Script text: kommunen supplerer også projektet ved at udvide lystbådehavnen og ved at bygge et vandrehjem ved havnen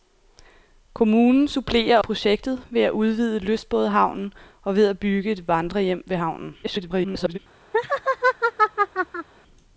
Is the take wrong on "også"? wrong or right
wrong